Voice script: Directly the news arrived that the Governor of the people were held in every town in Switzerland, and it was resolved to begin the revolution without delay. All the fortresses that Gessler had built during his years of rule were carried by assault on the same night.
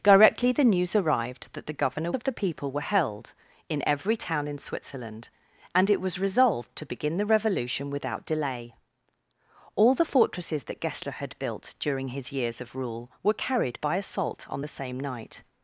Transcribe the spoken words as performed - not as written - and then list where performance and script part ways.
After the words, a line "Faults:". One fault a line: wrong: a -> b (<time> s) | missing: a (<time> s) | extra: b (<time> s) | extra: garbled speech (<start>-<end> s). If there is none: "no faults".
Directly the news arrived that the Governor of the people were held in every town in Switzerland, and it was resolved to begin the revolution without delay. All the fortresses that Gessler had built during his years of rule were carried by assault on the same night.
Faults:
no faults